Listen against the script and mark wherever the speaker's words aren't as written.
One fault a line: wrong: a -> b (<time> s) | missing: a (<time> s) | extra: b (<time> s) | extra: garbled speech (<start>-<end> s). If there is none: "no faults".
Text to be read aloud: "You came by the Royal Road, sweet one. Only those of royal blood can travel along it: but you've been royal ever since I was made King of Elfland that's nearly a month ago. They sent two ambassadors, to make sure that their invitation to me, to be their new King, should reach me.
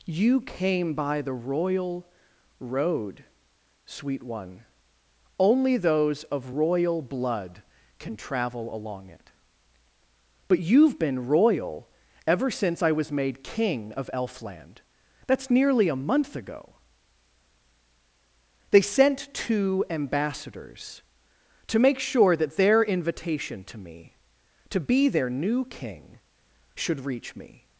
no faults